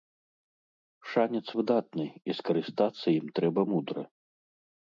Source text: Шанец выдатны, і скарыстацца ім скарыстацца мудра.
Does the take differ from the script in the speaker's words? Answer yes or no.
yes